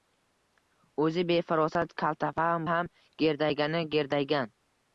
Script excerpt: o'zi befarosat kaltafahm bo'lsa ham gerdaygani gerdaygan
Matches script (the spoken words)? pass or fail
fail